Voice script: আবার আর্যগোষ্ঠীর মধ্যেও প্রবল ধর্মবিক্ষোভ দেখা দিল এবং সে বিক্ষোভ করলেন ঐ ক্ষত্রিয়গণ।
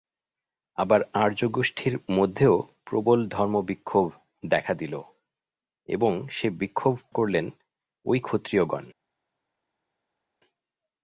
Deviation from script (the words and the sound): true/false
false